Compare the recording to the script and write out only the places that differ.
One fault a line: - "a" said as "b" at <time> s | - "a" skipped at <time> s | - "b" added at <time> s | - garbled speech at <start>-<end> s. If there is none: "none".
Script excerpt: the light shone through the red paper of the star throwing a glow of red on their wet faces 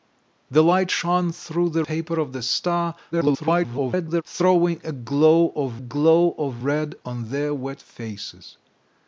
- "red" skipped at 1.9 s
- garbled speech at 3.1-4.2 s
- "glow of" added at 5.8 s